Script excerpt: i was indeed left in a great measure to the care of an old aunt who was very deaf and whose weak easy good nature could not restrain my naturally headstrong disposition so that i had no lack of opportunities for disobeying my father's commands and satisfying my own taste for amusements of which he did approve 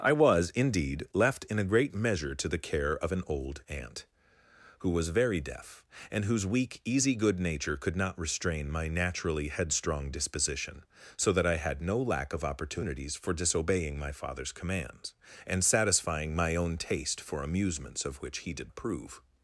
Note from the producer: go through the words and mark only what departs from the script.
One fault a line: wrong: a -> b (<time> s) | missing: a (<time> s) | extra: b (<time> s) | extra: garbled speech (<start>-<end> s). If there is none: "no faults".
no faults